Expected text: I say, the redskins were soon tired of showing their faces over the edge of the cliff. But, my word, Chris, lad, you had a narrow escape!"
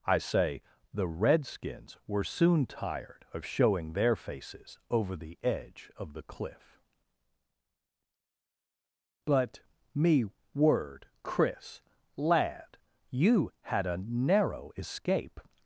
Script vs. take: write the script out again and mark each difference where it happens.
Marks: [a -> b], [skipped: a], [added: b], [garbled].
I say, the redskins were soon tired of showing their faces over the edge of the cliff. But, [my -> me] word, Chris, lad, you had a narrow escape!"